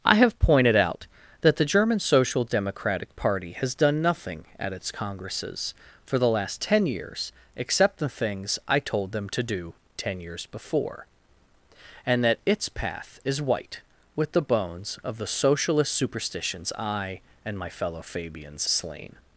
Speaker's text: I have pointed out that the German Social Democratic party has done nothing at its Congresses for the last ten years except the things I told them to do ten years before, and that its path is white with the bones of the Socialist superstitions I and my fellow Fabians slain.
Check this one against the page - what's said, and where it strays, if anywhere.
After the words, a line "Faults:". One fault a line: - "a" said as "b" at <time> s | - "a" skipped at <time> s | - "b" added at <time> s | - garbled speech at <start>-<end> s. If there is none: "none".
I have pointed out that the German Social Democratic party has done nothing at its Congresses for the last ten years except the things I told them to do ten years before, and that its path is white with the bones of the Socialist superstitions I and my fellow Fabians slain.
Faults:
none